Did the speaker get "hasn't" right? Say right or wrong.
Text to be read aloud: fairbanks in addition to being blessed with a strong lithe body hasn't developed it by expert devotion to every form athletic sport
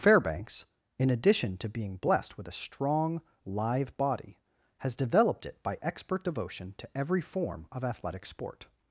wrong